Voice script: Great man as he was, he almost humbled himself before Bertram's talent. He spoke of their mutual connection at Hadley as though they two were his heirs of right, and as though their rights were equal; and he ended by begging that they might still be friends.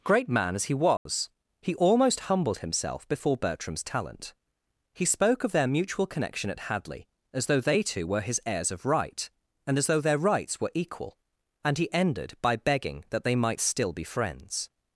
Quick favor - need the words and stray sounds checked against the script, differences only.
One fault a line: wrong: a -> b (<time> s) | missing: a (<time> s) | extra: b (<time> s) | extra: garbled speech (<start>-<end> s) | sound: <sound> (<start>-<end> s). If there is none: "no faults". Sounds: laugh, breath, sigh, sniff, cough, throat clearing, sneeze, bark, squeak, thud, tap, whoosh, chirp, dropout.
sound: dropout (1.0-1.1 s)